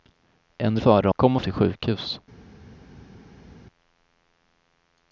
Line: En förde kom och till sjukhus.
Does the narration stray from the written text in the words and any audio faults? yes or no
no